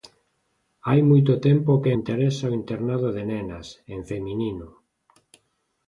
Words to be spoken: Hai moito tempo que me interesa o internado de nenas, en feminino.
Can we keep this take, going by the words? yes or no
no